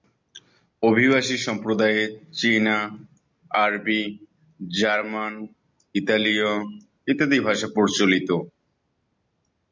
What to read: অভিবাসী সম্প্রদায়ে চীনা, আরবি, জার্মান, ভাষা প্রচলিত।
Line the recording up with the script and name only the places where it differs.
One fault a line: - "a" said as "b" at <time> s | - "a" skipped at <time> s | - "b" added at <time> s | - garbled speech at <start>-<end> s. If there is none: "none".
- "ইতালীয় ইত্যাদি" added at 6.0 s